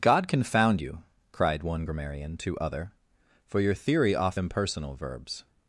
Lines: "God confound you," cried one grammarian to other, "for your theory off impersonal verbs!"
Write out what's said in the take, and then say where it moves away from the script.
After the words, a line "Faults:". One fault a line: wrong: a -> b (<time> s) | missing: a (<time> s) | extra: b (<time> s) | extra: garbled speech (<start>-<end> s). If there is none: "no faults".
"God confound you," cried one grammarian to other, "for your theory off impersonal verbs!"
Faults:
no faults